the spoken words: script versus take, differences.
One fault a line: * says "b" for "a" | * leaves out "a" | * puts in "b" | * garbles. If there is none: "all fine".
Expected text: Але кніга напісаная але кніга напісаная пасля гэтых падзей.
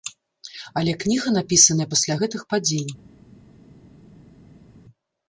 * leaves out "але кніга напісаная"